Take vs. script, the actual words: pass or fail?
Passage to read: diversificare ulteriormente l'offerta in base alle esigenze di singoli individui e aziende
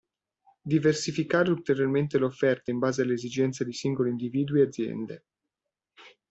pass